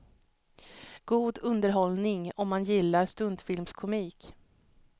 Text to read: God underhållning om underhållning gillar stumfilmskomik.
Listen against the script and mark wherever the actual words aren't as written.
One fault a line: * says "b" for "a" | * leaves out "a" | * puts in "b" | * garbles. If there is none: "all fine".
* says "man" for "underhållning"